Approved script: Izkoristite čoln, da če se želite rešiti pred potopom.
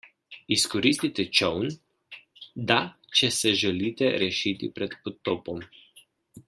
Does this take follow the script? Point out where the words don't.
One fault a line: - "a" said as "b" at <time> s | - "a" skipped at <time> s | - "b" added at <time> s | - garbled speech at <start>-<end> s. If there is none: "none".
none